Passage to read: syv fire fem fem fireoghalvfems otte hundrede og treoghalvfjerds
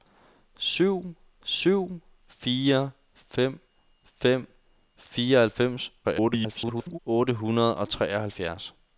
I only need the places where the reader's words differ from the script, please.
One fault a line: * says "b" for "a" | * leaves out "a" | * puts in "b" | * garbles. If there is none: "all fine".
* puts in "syv"
* garbles